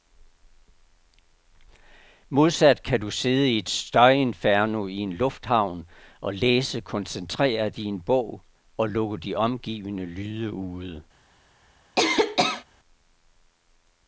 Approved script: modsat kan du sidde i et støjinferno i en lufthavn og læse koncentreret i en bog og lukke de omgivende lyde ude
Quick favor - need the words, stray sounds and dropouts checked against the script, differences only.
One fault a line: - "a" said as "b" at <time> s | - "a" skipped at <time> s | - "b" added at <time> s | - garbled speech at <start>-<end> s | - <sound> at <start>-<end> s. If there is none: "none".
- cough at 12.0-12.6 s